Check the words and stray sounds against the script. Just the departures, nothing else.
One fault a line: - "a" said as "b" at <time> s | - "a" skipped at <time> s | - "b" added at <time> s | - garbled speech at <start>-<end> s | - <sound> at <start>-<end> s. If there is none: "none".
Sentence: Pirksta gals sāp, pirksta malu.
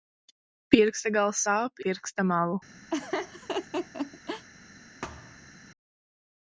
- laugh at 2.9-4.5 s
- thud at 5.0-5.6 s